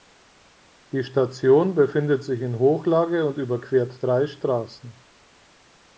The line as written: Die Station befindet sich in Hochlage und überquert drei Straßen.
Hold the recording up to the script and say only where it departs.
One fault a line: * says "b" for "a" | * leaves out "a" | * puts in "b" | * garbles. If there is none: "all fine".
all fine